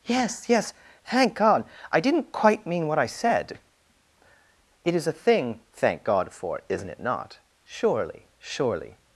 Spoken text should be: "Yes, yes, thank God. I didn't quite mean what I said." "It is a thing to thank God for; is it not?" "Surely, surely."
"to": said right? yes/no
no